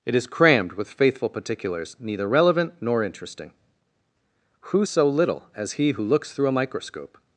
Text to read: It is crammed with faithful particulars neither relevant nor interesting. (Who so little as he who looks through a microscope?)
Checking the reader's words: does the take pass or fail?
pass